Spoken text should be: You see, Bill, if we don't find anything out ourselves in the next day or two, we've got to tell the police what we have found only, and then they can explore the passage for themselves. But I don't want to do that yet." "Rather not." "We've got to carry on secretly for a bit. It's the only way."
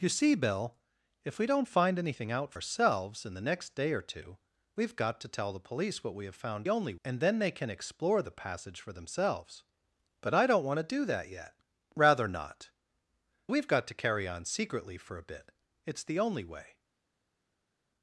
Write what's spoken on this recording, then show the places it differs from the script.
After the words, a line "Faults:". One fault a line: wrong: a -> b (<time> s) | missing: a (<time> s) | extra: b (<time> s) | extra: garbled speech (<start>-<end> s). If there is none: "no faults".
You see, Bill, if we don't find anything out ourselves in the next day or two, we've got to tell the police what we have found only, and then they can explore the passage for themselves. But I don't want to do that yet." "Rather not." "We've got to carry on secretly for a bit. It's the only way."
Faults:
no faults